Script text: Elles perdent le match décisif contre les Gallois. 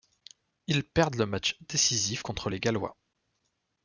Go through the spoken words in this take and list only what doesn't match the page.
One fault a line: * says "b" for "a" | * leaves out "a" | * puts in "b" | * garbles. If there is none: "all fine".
* says "Ils" for "Elles"